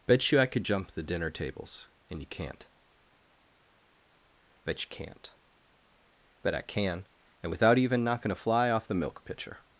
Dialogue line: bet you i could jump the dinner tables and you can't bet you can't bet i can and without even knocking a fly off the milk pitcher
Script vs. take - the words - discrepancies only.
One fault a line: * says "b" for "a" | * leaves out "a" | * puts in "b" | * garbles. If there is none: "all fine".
all fine